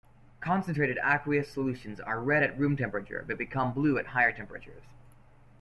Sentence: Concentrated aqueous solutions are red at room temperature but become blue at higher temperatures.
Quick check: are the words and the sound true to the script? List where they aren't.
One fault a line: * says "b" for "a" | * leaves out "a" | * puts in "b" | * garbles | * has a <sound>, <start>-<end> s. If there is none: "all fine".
all fine